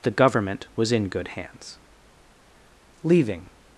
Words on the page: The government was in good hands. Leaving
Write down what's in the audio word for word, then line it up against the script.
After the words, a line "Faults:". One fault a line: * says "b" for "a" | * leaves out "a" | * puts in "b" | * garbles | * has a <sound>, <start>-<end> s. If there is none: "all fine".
The government was in good hands. Leaving
Faults:
all fine